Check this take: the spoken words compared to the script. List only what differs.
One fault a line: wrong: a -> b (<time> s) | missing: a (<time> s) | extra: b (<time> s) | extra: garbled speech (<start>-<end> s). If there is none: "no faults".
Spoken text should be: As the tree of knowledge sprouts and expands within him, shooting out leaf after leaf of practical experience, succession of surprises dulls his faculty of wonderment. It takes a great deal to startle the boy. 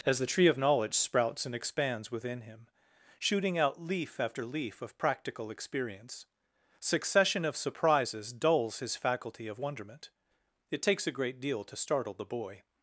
no faults